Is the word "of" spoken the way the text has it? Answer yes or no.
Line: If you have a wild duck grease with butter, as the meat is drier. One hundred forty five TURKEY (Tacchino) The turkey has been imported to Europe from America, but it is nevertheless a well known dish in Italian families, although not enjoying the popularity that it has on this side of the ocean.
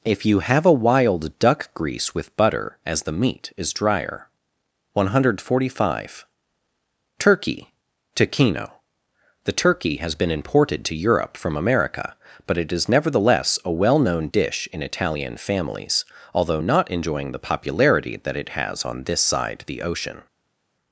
no